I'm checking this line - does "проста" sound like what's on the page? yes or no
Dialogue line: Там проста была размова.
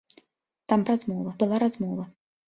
no